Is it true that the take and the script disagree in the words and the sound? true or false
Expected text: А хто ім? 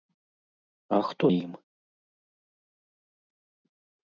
false